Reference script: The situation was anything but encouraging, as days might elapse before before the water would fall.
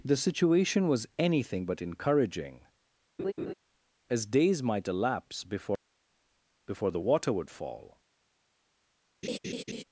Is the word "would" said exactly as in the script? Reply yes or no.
yes